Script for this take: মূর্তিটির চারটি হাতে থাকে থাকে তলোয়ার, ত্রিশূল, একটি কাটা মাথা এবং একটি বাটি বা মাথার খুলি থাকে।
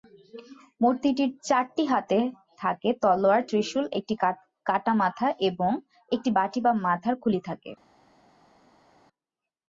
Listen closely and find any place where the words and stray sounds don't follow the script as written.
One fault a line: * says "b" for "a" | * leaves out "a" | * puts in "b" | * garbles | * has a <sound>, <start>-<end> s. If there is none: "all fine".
* leaves out "থাকে"